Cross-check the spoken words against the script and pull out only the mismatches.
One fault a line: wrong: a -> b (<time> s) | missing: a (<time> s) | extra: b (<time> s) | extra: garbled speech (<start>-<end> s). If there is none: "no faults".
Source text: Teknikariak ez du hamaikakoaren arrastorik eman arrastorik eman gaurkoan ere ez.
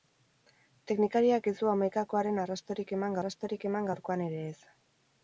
no faults